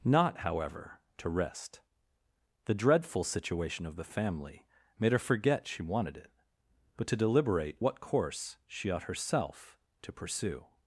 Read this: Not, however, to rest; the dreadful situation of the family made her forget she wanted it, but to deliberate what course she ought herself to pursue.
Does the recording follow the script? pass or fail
pass